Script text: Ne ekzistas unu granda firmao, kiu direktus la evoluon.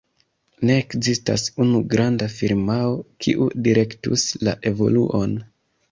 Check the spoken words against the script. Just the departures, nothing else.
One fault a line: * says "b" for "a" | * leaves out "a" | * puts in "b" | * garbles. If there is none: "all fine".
all fine